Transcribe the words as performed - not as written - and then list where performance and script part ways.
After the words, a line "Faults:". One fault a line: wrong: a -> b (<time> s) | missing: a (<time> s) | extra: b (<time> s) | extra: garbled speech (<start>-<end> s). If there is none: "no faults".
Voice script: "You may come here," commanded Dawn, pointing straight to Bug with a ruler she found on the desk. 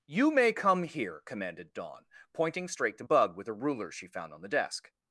"You may come here," commanded Dawn, pointing straight to Bug with a ruler she found on the desk.
Faults:
no faults